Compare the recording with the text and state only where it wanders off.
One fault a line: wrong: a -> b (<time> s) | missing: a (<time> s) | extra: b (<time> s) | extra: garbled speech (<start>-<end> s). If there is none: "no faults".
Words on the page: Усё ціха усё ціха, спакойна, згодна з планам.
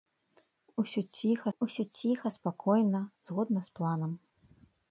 no faults